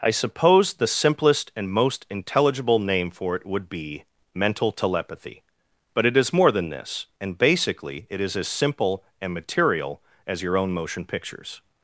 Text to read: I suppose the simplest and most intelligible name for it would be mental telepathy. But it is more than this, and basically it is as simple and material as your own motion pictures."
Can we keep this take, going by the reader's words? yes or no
yes